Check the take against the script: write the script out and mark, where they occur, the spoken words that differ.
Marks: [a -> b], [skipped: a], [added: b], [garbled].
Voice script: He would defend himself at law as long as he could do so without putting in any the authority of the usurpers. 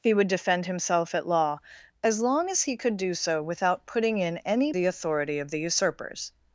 He would defend himself at law as long as he could do so without putting in any the authority of the usurpers.